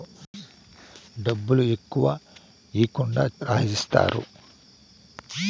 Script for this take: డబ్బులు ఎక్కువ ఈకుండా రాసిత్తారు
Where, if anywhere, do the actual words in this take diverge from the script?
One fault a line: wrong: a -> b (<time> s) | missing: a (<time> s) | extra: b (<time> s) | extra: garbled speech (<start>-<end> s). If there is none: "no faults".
no faults